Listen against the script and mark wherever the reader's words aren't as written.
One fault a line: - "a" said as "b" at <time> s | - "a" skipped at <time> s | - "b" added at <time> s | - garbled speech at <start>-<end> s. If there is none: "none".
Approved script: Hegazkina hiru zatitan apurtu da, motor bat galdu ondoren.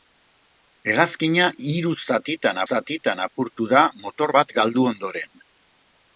- "zatitan" added at 2.7 s